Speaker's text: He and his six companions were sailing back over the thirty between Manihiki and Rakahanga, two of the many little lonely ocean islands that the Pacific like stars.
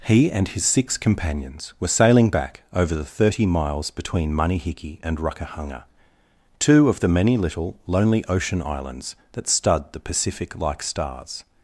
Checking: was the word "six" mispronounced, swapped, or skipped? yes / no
no